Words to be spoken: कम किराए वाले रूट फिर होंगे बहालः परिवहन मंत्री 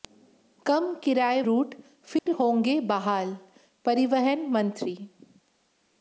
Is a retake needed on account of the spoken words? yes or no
yes